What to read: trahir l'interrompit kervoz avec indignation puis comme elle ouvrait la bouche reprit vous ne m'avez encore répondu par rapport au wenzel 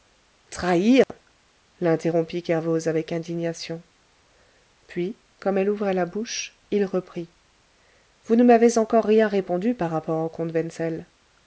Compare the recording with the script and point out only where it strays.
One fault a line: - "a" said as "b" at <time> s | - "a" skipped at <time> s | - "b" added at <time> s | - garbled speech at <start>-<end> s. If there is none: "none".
- "il" added at 6.7 s
- "rien" added at 9.1 s
- "comte" added at 10.3 s